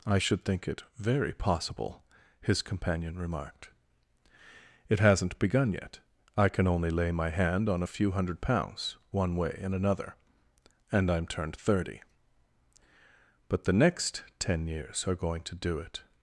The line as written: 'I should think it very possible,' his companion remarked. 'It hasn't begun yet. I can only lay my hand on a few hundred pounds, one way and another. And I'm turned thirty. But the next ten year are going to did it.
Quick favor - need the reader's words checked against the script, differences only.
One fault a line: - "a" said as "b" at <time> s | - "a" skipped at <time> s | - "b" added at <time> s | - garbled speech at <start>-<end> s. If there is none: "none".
- "year" said as "years" at 14.7 s
- "did" said as "do" at 15.5 s